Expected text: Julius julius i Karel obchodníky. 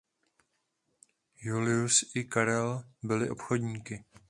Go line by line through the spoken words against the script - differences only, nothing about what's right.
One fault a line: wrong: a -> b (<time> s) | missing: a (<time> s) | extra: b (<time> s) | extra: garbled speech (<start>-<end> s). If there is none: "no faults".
missing: julius (2.1 s)
extra: byli (3.0 s)